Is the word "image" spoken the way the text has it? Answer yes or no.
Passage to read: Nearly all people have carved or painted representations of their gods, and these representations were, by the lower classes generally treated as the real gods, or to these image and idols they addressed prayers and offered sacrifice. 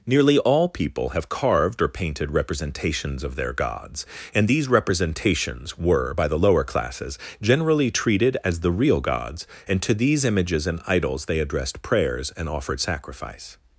no